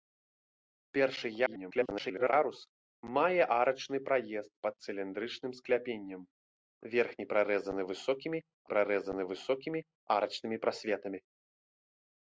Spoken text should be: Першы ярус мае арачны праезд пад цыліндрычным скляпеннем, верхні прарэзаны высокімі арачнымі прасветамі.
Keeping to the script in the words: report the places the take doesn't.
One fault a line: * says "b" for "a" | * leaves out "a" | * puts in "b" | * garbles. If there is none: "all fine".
* garbles
* puts in "прарэзаны высокімі"